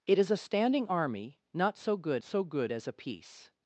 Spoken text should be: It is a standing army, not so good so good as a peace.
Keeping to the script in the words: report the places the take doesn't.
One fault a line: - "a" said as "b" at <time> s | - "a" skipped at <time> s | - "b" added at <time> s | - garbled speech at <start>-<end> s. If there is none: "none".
none